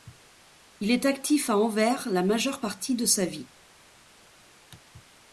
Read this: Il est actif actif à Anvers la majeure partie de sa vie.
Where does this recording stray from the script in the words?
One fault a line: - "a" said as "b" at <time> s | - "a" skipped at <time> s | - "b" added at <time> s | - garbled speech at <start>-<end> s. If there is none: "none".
- "actif" skipped at 1.5 s